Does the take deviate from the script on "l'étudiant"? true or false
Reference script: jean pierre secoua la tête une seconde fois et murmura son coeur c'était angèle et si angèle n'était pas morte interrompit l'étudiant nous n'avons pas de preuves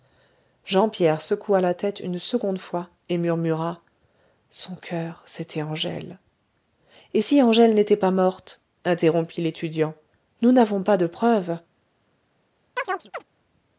false